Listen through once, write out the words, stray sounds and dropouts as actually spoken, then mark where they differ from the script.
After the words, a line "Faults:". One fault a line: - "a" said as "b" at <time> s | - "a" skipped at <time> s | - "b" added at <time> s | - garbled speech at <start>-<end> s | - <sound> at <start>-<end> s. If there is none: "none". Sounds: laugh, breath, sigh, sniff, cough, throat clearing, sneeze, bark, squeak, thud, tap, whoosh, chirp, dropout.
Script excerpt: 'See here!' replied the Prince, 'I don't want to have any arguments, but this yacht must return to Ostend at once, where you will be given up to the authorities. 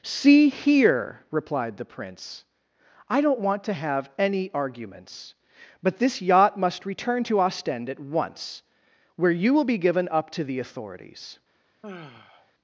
'See here!' replied the Prince, 'I don't want to have any arguments, but this yacht must return to Ostend at once, where you will be given up to the authorities.
Faults:
- sigh at 11.8-12.5 s